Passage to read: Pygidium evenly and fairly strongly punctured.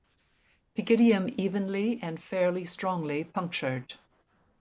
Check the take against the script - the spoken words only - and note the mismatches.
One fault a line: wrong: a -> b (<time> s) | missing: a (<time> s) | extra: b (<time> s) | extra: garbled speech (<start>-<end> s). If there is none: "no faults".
no faults